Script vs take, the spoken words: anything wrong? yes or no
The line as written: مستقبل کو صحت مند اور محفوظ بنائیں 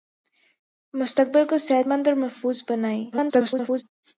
yes